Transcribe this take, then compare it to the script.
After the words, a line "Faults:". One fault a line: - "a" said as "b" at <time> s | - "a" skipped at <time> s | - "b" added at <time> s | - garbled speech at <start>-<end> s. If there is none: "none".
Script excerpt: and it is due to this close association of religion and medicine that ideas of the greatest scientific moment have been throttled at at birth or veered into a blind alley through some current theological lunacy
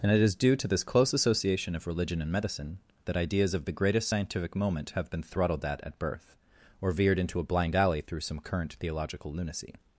and it is due to this close association of religion and medicine that ideas of the greatest scientific moment have been throttled at at birth or veered into a blind alley through some current theological lunacy
Faults:
none